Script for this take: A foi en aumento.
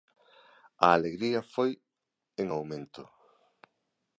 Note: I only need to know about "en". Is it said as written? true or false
true